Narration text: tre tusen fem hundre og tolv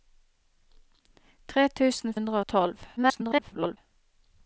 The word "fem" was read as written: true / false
false